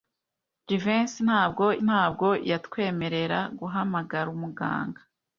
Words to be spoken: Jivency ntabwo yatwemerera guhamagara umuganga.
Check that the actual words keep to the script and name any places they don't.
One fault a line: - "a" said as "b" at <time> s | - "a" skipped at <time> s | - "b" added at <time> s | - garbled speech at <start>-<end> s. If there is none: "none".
- "ntabwo" added at 1.9 s